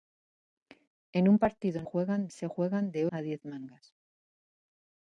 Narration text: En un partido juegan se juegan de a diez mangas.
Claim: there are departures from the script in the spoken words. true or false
false